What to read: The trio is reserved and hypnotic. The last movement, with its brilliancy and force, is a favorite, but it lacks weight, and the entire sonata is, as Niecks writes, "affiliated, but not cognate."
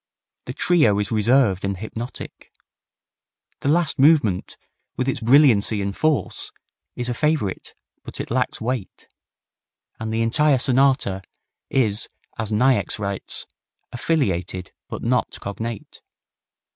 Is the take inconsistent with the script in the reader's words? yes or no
no